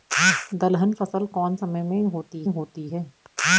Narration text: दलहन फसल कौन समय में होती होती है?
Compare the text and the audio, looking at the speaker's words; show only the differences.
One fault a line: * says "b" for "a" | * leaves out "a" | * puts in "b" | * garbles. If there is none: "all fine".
all fine